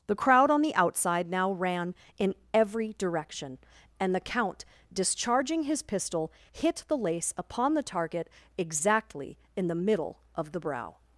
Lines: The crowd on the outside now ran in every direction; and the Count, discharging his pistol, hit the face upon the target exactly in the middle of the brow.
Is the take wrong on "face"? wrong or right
wrong